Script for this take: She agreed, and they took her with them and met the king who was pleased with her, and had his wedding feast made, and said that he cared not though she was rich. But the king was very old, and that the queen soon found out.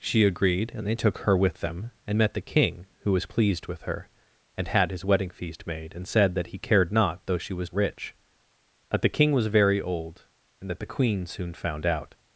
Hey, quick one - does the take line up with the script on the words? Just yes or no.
yes